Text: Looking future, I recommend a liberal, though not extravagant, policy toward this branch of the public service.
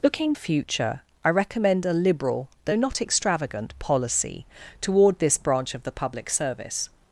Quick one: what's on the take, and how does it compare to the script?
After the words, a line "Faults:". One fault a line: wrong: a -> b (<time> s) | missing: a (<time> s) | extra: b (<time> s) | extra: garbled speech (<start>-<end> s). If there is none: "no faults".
Looking future, I recommend a liberal, though not extravagant, policy toward this branch of the public service.
Faults:
no faults